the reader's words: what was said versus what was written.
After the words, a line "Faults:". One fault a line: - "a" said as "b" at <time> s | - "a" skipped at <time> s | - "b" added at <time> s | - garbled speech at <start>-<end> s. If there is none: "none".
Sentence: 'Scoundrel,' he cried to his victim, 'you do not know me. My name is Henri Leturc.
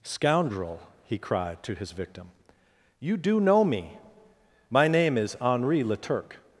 'Scoundrel,' he cried to his victim, 'you do know me. My name is Henri Leturc.
Faults:
- "not" skipped at 3.4 s